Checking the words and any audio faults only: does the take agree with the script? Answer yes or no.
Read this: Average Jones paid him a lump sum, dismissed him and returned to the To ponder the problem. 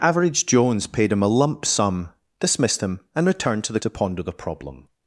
yes